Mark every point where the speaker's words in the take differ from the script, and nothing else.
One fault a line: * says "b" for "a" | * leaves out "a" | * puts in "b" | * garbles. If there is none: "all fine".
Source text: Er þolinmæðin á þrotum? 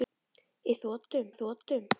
* says "þrotum" for "þolinmæðin"